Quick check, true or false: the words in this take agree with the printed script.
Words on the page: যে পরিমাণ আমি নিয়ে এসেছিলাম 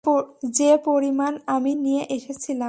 true